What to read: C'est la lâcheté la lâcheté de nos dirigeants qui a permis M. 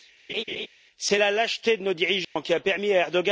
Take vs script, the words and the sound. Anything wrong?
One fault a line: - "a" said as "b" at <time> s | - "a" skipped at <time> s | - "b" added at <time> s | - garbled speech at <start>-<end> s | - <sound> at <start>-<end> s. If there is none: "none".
- laugh at 0.3-0.7 s
- "la lâcheté" skipped at 1.8 s
- dropout at 2.2-2.4 s
- "à" added at 2.9 s